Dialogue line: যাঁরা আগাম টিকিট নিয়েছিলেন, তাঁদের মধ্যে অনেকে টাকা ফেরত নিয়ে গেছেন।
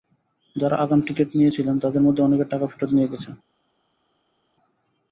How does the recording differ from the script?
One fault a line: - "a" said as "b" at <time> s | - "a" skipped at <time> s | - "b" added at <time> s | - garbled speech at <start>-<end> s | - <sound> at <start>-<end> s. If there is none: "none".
none